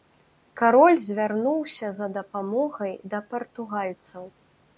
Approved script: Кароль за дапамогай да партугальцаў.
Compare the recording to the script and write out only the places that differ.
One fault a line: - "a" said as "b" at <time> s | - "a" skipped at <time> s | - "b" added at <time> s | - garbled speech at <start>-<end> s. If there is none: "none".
- "звярнуўся" added at 1.1 s